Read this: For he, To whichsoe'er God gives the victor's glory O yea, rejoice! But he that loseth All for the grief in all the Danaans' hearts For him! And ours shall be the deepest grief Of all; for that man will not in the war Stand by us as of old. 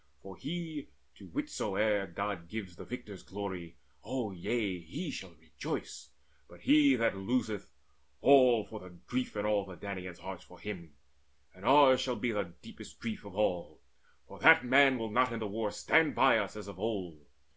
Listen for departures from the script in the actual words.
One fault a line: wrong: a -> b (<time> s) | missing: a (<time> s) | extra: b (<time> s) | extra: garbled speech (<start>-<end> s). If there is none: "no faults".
extra: he shall (4.8 s)